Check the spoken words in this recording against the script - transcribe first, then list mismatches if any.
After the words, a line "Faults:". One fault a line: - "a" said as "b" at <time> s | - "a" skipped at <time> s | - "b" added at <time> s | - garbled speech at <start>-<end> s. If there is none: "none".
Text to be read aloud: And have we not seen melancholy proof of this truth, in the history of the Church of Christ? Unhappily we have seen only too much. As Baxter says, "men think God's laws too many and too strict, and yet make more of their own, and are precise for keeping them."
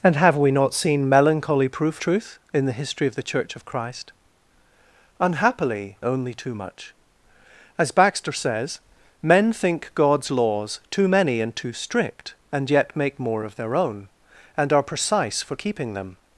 And have we not seen melancholy proof truth, in the history of the Church of Christ? Unhappily only too much. As Baxter says, "men think God's laws too many and too strict, and yet make more of their own, and are precise for keeping them."
Faults:
- "of this" skipped at 2.0 s
- "we have seen" skipped at 6.0 s